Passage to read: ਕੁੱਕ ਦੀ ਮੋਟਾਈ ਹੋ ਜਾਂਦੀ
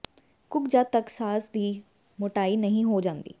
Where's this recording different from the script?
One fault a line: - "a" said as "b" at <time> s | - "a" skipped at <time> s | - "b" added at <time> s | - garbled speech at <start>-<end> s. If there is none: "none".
- "ਜਦ ਤੱਕ ਸਾਸ" added at 0.7 s
- "ਨਹੀਂ" added at 2.6 s